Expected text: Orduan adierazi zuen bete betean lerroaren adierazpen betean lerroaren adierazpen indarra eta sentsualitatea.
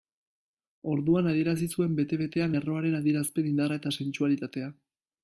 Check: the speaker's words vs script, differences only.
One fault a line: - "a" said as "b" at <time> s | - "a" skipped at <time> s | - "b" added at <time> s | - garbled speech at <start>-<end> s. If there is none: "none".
- "betean lerroaren adierazpen" skipped at 3.5 s